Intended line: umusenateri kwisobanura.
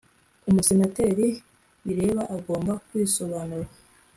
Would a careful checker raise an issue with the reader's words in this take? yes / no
yes